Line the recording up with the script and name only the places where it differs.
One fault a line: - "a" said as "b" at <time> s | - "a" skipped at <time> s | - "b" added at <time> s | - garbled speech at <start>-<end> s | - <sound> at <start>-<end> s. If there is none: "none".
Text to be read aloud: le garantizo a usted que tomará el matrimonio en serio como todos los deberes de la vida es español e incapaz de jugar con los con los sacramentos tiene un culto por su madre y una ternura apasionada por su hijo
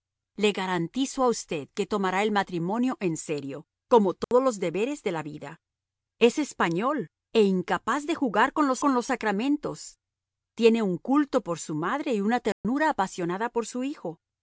- dropout at 4.2-4.3 s
- dropout at 12.5-12.6 s